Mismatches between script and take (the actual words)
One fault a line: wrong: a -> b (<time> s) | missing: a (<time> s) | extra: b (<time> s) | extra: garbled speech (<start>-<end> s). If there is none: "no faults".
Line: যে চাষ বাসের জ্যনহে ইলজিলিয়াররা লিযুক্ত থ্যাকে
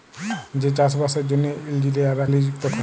no faults